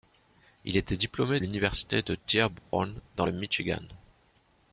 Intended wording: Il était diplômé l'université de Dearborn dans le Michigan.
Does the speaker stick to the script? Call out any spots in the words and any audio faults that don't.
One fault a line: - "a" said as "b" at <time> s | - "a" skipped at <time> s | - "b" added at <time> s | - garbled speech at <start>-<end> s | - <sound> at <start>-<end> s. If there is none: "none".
- dropout at 2.6-2.7 s